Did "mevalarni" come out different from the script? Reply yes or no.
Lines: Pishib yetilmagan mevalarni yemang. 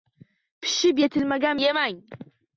yes